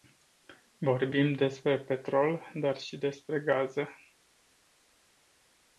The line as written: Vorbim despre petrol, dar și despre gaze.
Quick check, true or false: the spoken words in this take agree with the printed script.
true